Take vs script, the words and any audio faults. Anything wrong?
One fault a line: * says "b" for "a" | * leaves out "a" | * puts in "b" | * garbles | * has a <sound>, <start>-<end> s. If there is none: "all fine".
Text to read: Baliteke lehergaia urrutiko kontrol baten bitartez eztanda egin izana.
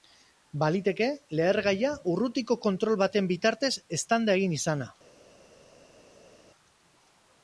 all fine